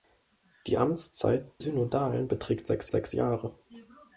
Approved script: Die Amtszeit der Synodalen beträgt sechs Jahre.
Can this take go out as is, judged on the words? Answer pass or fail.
fail